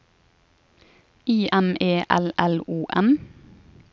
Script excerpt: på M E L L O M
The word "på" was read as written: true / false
false